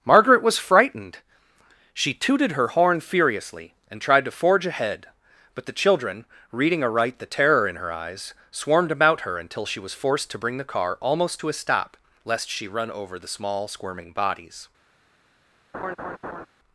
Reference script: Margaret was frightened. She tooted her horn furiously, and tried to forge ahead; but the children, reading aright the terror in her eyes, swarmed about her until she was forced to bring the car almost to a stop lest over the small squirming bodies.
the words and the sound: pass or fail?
fail